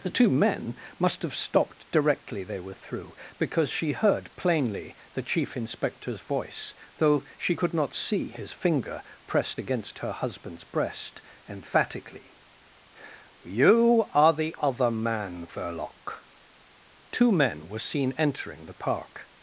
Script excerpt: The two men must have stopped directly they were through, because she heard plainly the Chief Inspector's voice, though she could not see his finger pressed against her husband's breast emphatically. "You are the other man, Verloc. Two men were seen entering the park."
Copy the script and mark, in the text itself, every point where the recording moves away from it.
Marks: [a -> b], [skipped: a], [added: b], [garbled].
The two men must have stopped directly they were through, because she heard plainly the Chief Inspector's voice, though she could not see his finger pressed against her husband's breast emphatically. "You are the other man, Verloc. Two men were seen entering the park."